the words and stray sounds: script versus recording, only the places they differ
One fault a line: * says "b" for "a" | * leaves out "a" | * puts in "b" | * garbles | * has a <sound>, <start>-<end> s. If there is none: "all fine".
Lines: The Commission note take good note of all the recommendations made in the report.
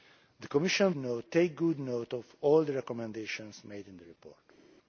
all fine